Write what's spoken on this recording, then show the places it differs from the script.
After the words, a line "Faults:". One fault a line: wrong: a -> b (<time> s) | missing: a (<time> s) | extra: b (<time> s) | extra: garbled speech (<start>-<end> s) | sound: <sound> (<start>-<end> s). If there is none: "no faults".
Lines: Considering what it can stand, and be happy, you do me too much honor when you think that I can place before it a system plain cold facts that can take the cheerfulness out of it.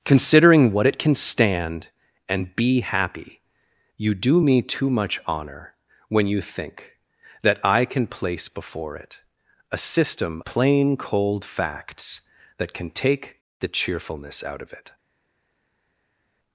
Considering what it can stand, and be happy, you do me too much honor when you think that I can place before it a system plain cold facts that can take the cheerfulness out of it.
Faults:
no faults